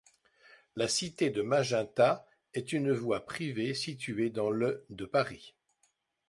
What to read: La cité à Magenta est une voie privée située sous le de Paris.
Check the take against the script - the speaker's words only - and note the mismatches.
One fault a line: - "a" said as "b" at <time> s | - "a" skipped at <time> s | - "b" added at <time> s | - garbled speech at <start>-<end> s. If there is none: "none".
- "à" said as "de" at 1.3 s
- "sous" said as "dans" at 4.3 s